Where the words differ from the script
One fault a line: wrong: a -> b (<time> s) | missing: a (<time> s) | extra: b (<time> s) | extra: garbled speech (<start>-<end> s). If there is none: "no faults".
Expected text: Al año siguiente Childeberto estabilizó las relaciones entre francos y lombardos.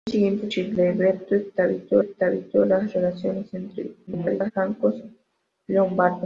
extra: estabilizó (2.0 s)
extra: garbled speech (4.1-4.5 s)